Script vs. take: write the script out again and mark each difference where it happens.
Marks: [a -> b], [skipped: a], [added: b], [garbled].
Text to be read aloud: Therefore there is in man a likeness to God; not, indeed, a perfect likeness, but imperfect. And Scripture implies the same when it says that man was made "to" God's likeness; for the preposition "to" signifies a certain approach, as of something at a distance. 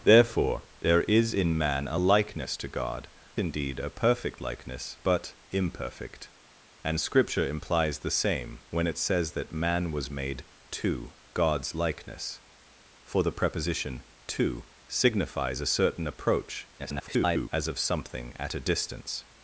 Therefore there is in man a likeness to God; [skipped: not,] indeed, a perfect likeness, but imperfect. And Scripture implies the same when it says that man was made "to" God's likeness; for the preposition "to" signifies a certain approach, [garbled] as of something at a distance.